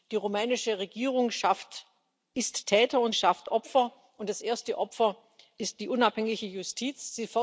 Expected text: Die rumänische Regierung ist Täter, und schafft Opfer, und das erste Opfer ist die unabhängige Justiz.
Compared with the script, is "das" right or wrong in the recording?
right